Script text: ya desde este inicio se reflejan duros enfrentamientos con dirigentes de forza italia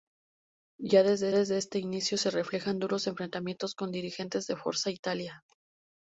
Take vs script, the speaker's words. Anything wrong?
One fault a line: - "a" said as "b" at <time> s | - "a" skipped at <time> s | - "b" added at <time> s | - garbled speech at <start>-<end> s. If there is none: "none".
- "desde" added at 1.3 s